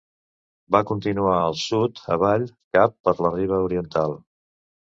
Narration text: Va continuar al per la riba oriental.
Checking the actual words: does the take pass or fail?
fail